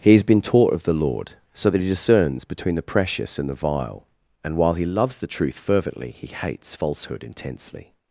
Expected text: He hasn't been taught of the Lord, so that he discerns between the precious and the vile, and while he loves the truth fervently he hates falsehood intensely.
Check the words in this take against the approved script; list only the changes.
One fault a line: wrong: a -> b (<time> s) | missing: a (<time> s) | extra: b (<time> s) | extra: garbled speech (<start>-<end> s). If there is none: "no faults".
wrong: hasn't -> has (0.1 s)